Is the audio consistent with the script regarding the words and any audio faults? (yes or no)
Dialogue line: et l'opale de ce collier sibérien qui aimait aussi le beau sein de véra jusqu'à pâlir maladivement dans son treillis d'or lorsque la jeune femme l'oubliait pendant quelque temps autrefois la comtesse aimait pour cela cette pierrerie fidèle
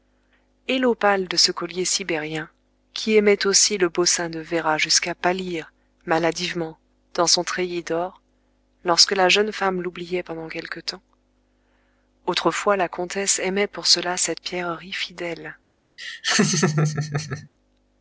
no